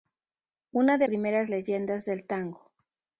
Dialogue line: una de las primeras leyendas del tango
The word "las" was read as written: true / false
false